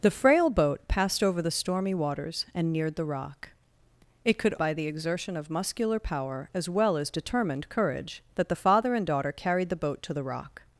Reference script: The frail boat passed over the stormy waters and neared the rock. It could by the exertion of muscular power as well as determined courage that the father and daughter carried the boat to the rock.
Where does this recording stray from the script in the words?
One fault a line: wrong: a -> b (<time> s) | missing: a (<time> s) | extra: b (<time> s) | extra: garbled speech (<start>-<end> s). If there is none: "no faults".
no faults